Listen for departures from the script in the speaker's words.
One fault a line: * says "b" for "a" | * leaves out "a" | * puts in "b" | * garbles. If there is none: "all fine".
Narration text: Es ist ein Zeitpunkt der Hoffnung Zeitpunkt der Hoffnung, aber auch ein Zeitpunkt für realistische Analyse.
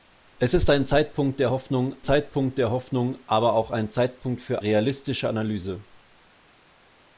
all fine